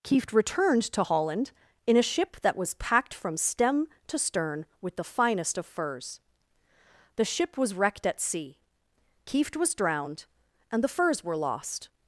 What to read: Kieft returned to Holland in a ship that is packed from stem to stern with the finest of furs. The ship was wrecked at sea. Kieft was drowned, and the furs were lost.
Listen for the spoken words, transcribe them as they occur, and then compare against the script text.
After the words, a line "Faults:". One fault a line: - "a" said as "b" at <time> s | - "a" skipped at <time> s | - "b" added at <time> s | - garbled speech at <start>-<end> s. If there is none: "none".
Kieft returned to Holland in a ship that was packed from stem to stern with the finest of furs. The ship was wrecked at sea. Kieft was drowned, and the furs were lost.
Faults:
- "is" said as "was" at 2.6 s